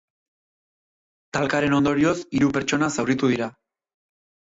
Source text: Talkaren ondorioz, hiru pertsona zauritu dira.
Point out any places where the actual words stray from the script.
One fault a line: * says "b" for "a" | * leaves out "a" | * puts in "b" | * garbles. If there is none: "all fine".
all fine